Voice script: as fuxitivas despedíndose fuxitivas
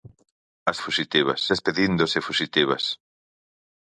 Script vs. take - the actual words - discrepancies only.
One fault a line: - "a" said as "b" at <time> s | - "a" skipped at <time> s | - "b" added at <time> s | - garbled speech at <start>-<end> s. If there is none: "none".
none